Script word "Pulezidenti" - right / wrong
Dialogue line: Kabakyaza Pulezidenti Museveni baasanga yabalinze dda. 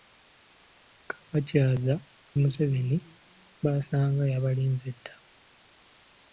wrong